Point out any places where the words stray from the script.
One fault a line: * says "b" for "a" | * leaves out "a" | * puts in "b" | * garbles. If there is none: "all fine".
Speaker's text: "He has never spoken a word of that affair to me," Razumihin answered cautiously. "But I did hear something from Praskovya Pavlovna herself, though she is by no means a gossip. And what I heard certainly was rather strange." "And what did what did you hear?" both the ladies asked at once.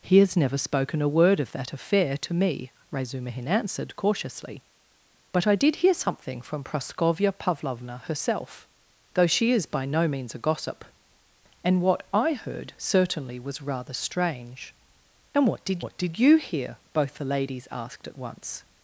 all fine